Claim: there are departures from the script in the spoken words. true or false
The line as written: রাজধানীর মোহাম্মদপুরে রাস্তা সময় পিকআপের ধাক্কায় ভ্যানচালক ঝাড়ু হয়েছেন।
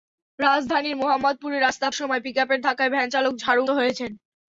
false